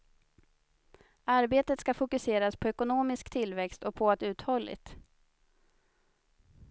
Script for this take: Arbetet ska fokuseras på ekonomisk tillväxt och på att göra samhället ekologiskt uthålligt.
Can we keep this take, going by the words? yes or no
no